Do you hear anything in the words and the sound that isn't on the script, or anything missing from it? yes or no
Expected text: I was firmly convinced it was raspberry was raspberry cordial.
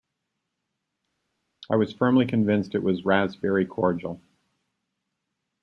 yes